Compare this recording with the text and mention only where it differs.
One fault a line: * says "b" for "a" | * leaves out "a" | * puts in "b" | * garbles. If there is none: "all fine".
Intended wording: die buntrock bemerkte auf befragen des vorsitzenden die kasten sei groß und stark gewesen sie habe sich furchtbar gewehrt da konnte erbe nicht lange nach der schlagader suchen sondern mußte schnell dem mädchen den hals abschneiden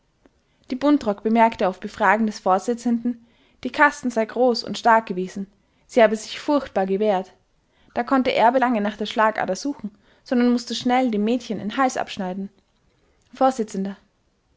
* leaves out "nicht"